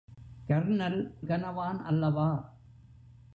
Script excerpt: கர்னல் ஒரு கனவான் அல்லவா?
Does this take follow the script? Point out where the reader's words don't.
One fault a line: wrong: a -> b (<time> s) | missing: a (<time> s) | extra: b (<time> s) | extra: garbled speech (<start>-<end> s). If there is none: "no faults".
missing: ஒரு (1.1 s)